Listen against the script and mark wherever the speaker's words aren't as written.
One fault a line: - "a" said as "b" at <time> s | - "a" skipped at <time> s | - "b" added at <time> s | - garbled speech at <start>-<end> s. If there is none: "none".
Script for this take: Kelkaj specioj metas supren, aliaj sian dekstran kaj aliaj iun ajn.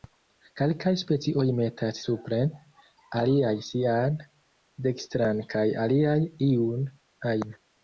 none